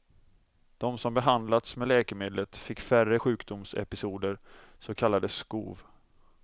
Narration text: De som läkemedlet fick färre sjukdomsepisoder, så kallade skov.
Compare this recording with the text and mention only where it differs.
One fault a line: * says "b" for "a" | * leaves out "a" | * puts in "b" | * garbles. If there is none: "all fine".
* puts in "behandlats med"